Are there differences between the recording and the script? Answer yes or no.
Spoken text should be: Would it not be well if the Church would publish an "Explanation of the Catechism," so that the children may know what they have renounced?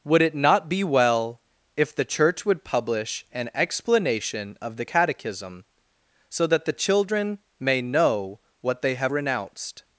no